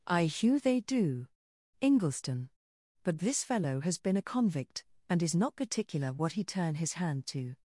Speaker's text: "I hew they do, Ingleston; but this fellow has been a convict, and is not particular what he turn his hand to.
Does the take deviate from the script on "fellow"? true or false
false